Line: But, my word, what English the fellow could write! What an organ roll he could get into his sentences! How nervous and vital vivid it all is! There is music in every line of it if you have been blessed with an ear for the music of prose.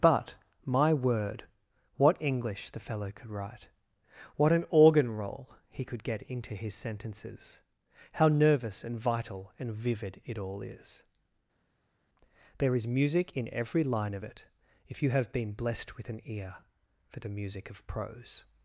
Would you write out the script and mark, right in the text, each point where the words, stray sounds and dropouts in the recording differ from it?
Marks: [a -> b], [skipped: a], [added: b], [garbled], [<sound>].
But, my word, what English the fellow could write! What an organ roll he could get into his sentences! How nervous and vital [added: and] vivid it all is! There is music in every line of it if you have been blessed with an ear for the music of prose.